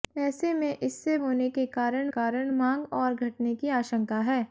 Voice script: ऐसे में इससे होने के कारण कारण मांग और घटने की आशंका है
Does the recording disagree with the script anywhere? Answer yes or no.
no